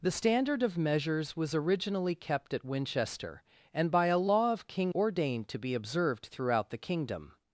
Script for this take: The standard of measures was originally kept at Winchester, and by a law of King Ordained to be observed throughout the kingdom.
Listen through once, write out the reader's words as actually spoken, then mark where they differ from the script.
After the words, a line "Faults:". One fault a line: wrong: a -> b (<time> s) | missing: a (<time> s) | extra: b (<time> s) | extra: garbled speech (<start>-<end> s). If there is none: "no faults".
The standard of measures was originally kept at Winchester, and by a law of King Ordained to be observed throughout the kingdom.
Faults:
no faults